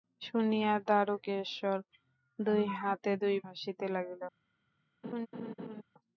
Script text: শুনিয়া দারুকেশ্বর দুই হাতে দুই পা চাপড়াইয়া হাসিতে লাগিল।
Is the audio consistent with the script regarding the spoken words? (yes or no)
no